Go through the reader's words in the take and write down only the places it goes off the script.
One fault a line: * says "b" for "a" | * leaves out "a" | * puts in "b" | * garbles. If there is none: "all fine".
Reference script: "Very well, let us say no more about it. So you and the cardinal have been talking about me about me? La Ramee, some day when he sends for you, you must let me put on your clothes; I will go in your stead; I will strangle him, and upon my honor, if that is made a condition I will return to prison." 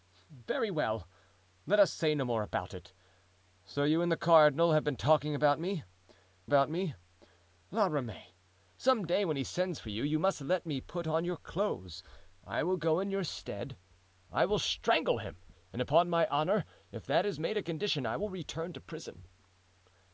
all fine